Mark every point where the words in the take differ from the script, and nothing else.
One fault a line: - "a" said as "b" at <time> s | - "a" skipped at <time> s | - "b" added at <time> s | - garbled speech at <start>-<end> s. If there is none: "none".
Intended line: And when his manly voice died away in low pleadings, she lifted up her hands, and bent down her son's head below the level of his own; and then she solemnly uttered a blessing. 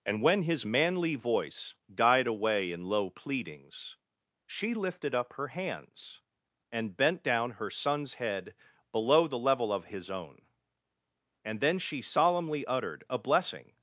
none